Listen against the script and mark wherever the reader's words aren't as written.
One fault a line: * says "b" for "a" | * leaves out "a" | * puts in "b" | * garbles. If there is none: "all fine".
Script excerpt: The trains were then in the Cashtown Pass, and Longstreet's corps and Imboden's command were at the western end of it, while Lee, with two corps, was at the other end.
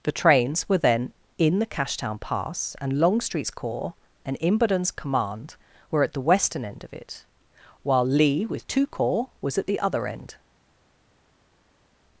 all fine